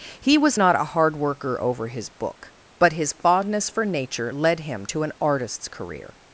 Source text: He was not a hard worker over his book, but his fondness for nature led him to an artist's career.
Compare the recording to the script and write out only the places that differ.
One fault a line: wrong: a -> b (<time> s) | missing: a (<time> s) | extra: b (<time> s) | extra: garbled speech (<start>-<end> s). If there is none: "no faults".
no faults